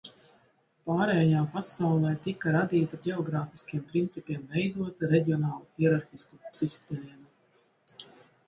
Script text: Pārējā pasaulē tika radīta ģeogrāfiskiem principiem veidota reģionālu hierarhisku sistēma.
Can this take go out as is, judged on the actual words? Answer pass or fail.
pass